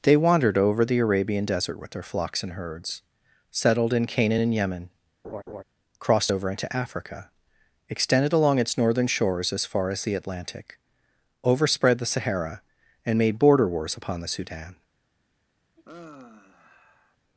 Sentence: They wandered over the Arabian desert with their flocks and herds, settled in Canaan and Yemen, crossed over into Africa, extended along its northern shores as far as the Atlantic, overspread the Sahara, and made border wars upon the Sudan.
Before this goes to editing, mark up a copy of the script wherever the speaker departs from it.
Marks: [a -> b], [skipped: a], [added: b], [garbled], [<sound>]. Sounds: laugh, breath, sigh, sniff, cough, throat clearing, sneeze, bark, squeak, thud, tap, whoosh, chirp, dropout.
They wandered over the Arabian desert with their flocks and herds, settled in Canaan and Yemen, [laugh] crossed over into Africa, extended along its northern shores as far as the Atlantic, overspread the Sahara, and made border wars upon the Sudan. [sigh]